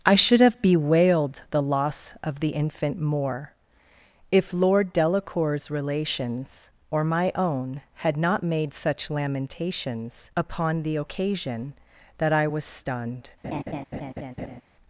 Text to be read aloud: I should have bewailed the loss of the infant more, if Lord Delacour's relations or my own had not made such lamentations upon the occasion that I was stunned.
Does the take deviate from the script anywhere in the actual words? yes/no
no